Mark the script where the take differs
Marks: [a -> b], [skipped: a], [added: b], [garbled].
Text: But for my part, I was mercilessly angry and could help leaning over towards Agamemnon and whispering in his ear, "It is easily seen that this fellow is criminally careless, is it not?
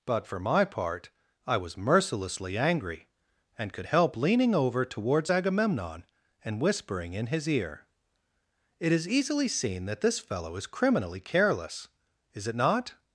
But for my part, I was mercilessly angry and could help leaning over towards Agamemnon and whispering in his ear, "It is easily seen that this fellow is criminally careless, is it not?